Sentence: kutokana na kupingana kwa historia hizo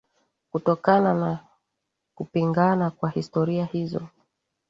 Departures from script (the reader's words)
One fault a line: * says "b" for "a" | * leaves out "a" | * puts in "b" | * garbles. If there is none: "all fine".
all fine